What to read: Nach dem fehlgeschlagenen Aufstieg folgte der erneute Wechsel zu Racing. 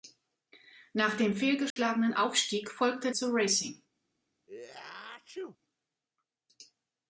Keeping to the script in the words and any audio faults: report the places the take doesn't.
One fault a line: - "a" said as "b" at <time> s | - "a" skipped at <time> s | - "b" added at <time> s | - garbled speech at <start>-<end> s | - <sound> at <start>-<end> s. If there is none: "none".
- dropout at 1.7-1.8 s
- "der erneute Wechsel" skipped at 3.1 s
- sneeze at 4.5-5.6 s